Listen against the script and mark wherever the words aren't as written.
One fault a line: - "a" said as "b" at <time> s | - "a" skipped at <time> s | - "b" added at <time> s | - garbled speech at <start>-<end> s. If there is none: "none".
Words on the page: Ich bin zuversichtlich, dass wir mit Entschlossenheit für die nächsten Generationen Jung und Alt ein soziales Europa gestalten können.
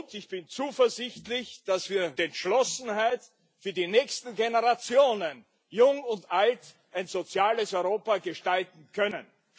- "mit" skipped at 2.1 s